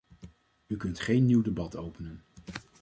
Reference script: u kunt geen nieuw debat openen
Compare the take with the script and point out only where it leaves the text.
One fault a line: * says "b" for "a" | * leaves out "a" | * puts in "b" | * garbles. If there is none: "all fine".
all fine